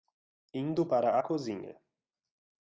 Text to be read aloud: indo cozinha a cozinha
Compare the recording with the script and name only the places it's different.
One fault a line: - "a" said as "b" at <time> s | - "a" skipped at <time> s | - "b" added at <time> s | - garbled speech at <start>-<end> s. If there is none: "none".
- "cozinha" said as "para" at 0.9 s